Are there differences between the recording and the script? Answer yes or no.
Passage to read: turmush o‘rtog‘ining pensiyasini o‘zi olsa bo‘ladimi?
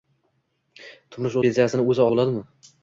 yes